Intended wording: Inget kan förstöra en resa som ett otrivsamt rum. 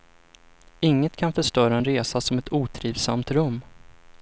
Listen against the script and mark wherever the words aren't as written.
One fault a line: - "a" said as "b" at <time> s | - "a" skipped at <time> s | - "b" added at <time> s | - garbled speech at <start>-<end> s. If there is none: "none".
none